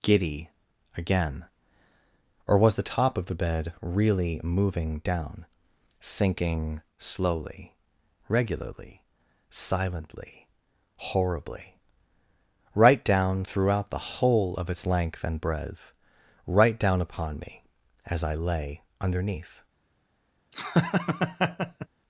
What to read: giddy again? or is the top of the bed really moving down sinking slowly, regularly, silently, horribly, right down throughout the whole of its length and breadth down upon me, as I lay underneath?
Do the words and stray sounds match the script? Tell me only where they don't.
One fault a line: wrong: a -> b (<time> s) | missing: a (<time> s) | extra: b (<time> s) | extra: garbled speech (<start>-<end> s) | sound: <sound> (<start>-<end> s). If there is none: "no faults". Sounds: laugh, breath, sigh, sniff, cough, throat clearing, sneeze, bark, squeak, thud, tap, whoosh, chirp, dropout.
wrong: is -> was (2.6 s)
extra: right (16.5 s)
sound: laugh (20.5-21.9 s)